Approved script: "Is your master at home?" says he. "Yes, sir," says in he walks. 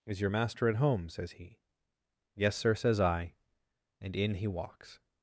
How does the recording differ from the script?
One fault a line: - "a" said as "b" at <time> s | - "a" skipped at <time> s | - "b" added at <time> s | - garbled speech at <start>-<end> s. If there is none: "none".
- "I and" added at 3.0 s